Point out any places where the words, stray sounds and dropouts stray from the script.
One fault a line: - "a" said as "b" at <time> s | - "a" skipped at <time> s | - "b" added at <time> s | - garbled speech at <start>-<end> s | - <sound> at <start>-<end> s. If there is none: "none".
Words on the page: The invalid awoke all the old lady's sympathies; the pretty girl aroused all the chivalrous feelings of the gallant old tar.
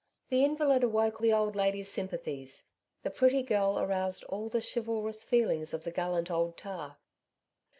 - "all" skipped at 1.2 s